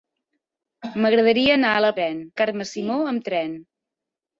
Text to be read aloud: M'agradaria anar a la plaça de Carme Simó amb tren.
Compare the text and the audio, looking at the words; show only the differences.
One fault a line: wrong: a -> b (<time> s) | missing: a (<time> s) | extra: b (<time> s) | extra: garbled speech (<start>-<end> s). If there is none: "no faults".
wrong: plaça -> tren (2.0 s)